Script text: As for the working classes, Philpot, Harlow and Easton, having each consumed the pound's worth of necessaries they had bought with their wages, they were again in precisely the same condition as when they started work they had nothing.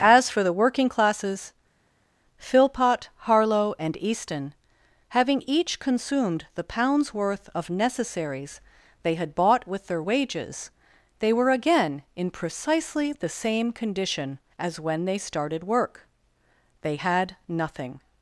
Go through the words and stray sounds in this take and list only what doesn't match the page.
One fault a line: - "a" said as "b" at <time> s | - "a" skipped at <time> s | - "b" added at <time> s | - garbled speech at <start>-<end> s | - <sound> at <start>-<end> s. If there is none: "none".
none